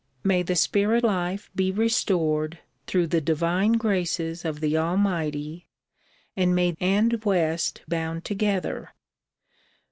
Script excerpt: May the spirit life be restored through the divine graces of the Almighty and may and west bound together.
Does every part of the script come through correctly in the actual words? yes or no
yes